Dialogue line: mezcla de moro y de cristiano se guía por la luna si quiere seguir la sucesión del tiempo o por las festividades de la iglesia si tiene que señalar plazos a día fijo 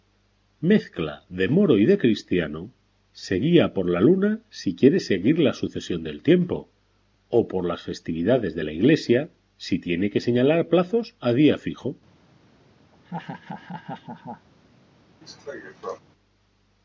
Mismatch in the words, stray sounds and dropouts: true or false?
true